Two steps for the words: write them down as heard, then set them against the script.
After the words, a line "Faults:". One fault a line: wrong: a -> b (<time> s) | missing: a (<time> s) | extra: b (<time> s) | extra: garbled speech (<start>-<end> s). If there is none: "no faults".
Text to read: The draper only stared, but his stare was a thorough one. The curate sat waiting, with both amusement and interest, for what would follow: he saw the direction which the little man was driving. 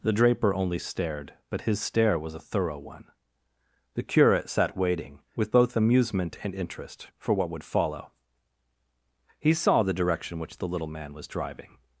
The draper only stared, but his stare was a thorough one. The curate sat waiting, with both amusement and interest, for what would follow: he saw the direction which the little man was driving.
Faults:
no faults